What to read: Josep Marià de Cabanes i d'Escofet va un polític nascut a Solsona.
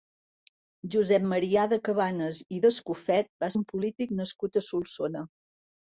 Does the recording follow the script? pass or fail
pass